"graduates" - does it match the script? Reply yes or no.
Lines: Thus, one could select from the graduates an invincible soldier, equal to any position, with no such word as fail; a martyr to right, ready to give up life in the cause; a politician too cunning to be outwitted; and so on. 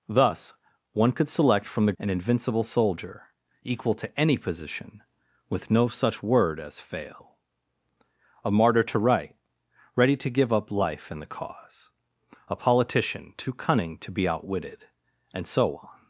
no